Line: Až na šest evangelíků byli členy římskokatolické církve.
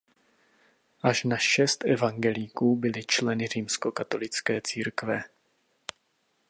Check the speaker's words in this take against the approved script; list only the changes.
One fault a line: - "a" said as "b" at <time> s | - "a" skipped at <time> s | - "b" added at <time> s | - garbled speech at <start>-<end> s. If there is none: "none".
none